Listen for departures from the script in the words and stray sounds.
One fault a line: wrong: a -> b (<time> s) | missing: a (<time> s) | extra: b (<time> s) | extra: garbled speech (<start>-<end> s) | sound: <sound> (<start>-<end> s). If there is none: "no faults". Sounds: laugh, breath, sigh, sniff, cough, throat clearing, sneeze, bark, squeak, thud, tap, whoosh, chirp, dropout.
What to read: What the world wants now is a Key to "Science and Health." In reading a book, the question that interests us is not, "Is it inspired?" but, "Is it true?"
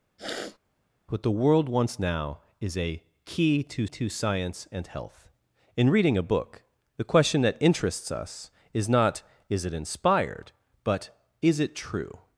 sound: sniff (0.2-0.6 s)
extra: to (3.8 s)